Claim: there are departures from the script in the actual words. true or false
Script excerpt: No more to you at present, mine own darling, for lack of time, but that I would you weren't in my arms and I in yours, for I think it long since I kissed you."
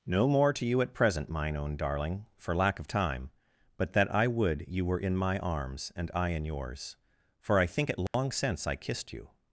true